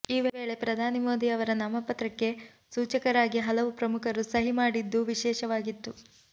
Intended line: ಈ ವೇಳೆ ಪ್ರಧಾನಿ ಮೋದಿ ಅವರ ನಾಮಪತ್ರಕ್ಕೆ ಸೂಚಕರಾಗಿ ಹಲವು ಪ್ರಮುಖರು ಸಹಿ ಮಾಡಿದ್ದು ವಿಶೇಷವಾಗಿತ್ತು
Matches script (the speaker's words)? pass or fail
pass